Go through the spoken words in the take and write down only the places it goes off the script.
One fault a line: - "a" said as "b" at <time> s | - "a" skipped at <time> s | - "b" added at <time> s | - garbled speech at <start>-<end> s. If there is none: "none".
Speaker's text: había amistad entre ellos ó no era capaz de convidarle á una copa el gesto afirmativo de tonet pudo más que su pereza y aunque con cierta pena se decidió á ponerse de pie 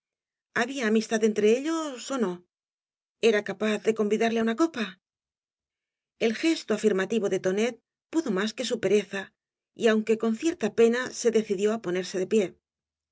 none